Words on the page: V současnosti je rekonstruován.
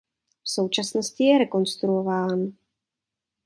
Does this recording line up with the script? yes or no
yes